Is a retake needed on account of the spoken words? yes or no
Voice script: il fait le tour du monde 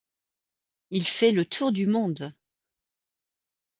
no